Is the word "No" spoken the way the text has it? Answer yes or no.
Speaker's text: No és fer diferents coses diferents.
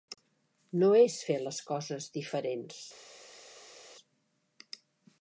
yes